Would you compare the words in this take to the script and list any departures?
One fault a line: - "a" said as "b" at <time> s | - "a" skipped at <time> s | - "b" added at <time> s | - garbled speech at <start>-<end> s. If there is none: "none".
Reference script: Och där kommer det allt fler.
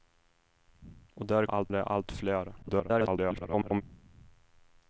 - "kommer" said as "allt" at 1.5 s
- garbled speech at 2.6-3.8 s